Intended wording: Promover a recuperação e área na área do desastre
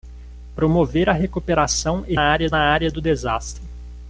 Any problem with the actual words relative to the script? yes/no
no